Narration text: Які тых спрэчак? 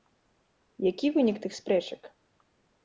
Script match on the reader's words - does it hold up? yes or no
no